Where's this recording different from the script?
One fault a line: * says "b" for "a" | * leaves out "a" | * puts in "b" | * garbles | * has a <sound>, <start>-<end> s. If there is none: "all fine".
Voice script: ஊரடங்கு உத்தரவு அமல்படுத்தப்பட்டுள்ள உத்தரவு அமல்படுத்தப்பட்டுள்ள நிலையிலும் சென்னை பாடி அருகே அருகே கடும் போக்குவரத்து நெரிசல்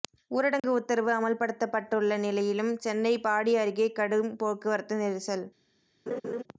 * has a dropout, 0.6-0.6 s
* leaves out "உத்தரவு அமல்படுத்தப்பட்டுள்ள"
* leaves out "அருகே"
* has a laugh, 6.1-6.4 s